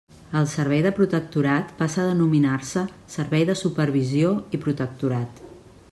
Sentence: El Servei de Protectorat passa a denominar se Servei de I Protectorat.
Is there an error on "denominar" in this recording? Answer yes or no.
no